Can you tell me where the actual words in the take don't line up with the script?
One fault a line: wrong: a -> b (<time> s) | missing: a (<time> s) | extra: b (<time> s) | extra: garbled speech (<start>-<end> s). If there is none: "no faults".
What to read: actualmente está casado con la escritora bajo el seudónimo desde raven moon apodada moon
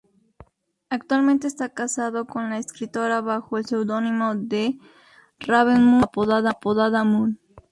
wrong: desde -> de (4.3 s)